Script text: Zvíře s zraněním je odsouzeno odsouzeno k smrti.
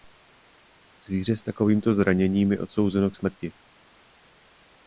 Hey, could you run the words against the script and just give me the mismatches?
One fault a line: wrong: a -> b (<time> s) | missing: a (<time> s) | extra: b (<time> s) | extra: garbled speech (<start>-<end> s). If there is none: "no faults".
extra: takovýmto (1.4 s)
missing: odsouzeno (3.1 s)